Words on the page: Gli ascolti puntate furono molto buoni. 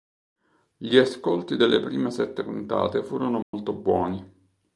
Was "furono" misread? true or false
false